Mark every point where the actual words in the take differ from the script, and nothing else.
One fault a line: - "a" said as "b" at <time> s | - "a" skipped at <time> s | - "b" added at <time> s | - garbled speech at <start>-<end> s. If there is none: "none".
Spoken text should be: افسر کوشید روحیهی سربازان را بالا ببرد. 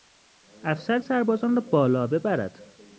- "کوشید روحیهی" skipped at 1.0 s